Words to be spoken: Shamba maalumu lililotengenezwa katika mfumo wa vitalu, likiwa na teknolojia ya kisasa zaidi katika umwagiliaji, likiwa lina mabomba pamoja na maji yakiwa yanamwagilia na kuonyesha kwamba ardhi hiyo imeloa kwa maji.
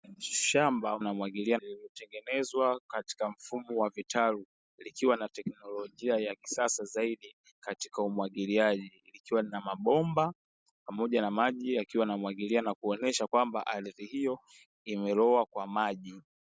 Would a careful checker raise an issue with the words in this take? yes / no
yes